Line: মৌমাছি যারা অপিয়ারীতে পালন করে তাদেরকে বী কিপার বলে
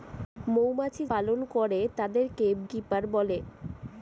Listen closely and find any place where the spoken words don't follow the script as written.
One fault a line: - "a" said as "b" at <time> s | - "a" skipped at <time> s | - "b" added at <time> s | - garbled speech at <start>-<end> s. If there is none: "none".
- "যারা অপিয়ারীতে" skipped at 1.0 s
- "বী" skipped at 2.5 s